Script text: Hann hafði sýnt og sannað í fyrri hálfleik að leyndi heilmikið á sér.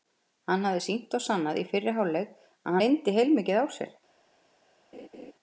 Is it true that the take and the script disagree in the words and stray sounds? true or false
true